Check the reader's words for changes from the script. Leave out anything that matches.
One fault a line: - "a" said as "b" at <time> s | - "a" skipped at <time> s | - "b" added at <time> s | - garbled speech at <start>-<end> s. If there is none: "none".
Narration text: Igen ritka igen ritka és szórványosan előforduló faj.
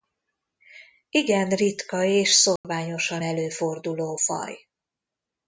- "igen ritka" skipped at 2.0 s